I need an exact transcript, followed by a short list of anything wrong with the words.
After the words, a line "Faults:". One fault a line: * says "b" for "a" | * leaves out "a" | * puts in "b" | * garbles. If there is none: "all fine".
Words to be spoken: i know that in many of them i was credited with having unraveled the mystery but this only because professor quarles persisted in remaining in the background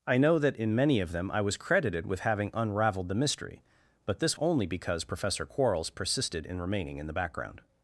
i know that in many of them i was credited with having unraveled the mystery but this only because professor quarles persisted in remaining in the background
Faults:
all fine